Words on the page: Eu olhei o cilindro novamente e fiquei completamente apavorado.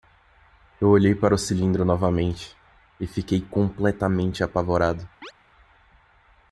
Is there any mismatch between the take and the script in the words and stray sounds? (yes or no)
yes